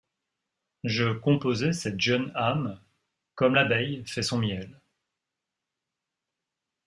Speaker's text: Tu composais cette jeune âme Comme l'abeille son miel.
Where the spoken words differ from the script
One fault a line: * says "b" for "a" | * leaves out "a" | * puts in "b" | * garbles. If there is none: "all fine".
* says "Je" for "Tu"
* puts in "fait"